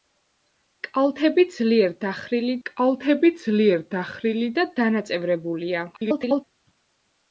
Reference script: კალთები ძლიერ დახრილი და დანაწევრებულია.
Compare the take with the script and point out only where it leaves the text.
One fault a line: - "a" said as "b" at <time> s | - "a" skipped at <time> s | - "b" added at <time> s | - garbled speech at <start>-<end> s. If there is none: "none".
- "კალთები ძლიერ დახრილი" added at 2.7 s
- garbled speech at 5.9-6.4 s